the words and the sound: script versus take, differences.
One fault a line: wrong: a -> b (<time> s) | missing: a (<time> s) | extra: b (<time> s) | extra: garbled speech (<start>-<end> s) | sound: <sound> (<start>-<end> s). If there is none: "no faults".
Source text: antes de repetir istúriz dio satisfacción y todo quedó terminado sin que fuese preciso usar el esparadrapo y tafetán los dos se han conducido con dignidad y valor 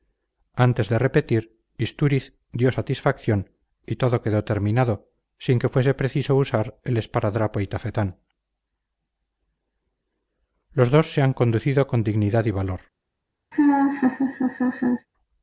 sound: laugh (13.5-15.1 s)